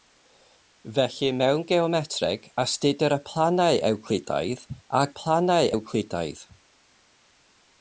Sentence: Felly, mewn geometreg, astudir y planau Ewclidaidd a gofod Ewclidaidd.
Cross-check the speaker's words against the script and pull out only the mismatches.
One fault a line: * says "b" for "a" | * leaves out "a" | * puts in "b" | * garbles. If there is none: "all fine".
* says "planau" for "gofod"